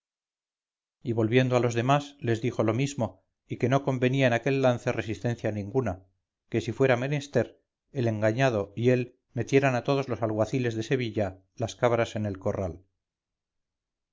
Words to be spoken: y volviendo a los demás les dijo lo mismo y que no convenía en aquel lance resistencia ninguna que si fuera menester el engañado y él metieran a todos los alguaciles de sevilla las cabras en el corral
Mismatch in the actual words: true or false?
false